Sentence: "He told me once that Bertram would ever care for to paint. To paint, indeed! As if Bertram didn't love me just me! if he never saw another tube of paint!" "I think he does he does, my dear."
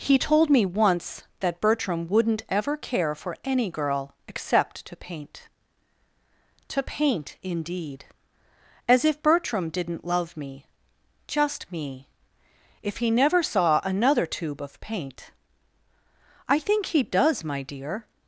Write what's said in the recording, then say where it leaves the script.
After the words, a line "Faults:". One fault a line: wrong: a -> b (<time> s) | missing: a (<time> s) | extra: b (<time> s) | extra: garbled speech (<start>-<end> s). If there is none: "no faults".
"He told me once that Bertram wouldn't ever care for any girl except to paint. To paint, indeed! As if Bertram didn't love me just me! if he never saw another tube of paint!" "I think he does, my dear."
Faults:
wrong: would -> wouldn't (2.1 s)
extra: any girl except (3.5 s)
missing: he does (17.4 s)